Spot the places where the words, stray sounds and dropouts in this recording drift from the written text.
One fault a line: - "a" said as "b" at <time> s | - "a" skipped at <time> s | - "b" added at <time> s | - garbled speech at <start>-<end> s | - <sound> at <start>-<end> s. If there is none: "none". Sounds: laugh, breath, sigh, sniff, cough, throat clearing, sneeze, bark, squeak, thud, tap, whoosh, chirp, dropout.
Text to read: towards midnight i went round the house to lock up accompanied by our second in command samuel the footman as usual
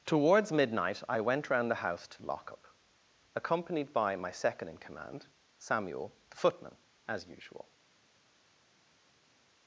- "our" said as "my" at 4.2 s